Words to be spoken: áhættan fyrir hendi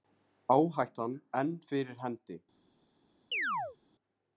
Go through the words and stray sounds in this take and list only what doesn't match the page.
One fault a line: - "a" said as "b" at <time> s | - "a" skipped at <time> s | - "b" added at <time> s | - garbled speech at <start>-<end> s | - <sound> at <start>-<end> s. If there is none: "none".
- "enn" added at 1.4 s
- chirp at 3.3-3.8 s